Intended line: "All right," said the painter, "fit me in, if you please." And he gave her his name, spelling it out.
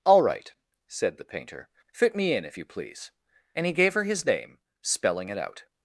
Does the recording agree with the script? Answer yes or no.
yes